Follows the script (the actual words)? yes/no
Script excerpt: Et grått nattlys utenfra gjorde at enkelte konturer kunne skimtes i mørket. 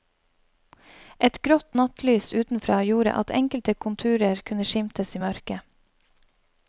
yes